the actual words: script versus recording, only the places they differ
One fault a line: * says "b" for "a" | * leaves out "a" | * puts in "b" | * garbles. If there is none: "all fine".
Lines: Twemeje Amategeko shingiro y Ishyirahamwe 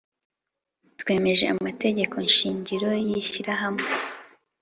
all fine